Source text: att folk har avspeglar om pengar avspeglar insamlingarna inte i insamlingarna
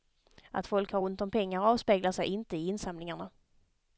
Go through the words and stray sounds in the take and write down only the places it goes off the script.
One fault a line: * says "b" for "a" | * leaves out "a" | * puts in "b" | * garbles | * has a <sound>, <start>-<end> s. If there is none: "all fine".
* says "ont" for "avspeglar"
* says "sig" for "insamlingarna"